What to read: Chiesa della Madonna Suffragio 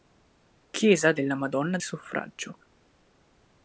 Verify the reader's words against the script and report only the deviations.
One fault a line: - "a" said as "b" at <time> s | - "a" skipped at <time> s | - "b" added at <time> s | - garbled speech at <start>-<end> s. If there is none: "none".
none